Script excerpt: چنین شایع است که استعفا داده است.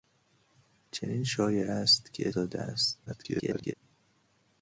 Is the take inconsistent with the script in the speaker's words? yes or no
yes